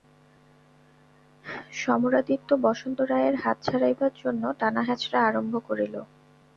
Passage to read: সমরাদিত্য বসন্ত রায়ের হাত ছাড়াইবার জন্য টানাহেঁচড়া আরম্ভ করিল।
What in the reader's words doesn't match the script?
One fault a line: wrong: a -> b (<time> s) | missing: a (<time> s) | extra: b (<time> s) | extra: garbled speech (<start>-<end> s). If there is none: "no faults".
no faults